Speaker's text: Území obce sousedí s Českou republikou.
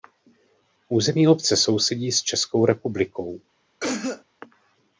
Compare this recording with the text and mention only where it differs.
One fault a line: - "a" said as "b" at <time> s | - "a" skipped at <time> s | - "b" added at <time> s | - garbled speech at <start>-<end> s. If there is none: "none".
none